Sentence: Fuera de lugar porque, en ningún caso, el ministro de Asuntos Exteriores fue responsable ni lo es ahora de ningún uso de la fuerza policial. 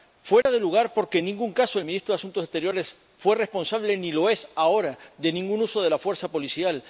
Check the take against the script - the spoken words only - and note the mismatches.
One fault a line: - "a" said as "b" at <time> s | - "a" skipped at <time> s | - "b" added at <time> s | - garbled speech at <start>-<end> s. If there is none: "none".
none